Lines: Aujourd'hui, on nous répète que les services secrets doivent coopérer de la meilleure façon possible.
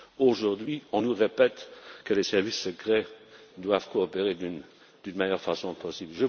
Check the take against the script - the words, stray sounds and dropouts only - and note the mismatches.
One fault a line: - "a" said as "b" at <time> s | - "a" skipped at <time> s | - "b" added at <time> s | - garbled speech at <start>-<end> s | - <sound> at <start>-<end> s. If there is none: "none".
none